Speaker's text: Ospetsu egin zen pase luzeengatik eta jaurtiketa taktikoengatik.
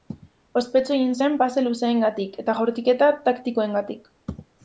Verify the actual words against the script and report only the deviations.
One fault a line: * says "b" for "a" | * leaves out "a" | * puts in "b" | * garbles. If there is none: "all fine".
all fine